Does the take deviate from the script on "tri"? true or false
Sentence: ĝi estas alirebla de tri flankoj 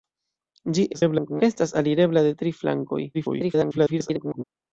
false